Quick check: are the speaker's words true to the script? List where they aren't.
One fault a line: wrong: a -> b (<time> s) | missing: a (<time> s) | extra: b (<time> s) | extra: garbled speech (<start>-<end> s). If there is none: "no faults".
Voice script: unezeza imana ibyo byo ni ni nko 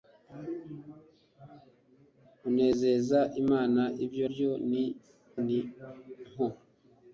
no faults